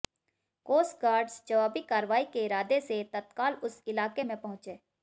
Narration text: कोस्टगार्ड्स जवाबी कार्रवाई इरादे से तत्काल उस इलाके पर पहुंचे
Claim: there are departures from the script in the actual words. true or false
true